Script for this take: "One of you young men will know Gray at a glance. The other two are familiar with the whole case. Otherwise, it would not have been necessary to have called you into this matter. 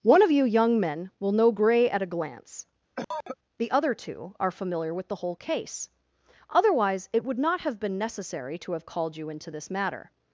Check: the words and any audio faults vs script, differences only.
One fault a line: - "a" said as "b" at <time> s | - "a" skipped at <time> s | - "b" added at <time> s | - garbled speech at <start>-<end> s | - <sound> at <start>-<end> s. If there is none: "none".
- cough at 3.0-3.4 s